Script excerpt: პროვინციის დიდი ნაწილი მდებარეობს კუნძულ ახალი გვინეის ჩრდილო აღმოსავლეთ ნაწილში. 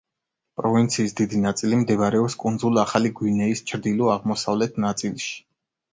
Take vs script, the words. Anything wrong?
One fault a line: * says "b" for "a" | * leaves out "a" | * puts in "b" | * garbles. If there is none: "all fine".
all fine